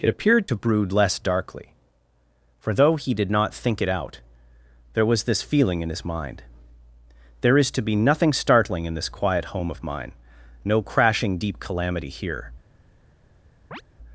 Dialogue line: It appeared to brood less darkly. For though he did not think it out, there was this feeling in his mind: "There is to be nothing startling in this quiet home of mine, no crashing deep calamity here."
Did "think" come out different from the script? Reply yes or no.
no